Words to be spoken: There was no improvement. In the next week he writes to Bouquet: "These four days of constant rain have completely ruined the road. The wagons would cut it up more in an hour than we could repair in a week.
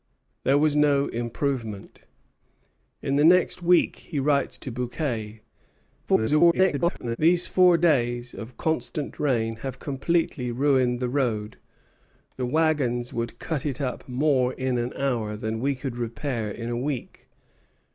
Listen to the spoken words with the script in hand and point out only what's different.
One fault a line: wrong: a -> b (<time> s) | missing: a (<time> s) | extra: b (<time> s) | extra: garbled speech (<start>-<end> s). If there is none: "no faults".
extra: garbled speech (6.1-7.2 s)